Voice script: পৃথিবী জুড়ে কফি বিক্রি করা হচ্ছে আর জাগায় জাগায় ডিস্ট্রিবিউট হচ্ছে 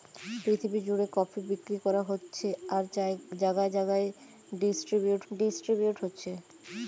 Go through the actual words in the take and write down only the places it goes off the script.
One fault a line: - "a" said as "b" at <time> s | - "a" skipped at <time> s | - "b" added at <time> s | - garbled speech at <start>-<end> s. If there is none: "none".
- "ডিস্ট্রিবিউট" added at 5.3 s